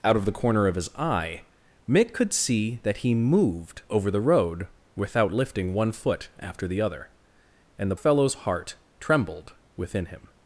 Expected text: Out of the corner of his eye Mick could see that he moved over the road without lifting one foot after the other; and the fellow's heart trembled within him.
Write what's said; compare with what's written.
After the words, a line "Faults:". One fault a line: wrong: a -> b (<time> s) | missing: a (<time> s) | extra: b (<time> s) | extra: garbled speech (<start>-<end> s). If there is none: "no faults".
Out of the corner of his eye Mick could see that he moved over the road without lifting one foot after the other; and the fellow's heart trembled within him.
Faults:
no faults